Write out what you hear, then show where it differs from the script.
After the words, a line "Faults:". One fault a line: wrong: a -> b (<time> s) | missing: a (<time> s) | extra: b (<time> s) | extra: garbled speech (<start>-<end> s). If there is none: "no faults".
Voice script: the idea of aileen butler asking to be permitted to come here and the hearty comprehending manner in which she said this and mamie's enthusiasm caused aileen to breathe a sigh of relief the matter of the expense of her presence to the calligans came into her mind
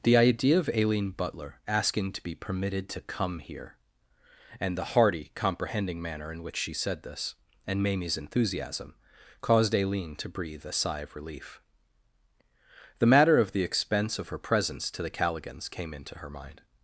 the idea of aileen butler asking to be permitted to come here and the hearty comprehending manner in which she said this and mamie's enthusiasm caused aileen to breathe a sigh of relief the matter of the expense of her presence to the calligans came into her mind
Faults:
no faults